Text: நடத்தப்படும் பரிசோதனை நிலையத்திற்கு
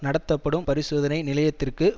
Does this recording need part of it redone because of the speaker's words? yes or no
no